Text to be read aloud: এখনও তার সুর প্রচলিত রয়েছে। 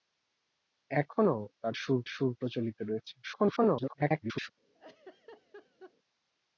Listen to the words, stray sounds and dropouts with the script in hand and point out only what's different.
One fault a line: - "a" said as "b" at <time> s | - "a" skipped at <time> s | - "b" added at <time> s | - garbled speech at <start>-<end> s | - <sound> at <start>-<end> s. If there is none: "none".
- "সুর" added at 2.0 s
- garbled speech at 3.2-4.5 s
- laugh at 4.7-6.0 s